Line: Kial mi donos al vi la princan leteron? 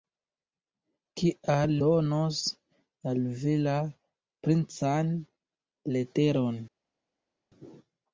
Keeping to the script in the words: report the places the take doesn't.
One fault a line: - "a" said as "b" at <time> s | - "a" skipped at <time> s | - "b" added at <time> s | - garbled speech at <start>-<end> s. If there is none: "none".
- "mi" skipped at 1.7 s